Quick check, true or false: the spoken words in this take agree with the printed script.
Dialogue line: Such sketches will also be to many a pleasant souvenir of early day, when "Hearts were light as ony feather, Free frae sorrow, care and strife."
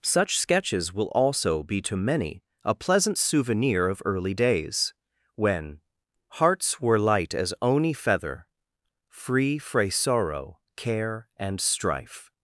false